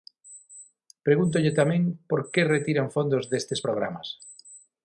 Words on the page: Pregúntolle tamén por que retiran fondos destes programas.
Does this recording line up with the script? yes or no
yes